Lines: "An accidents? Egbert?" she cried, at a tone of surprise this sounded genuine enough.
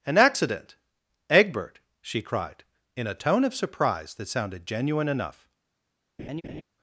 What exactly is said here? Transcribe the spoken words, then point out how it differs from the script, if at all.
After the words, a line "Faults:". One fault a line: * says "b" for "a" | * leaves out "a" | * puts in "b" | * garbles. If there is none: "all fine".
"An accident? Egbert?" she cried, in a tone of surprise that sounded genuine enough.
Faults:
* says "accident" for "accidents"
* says "in" for "at"
* says "that" for "this"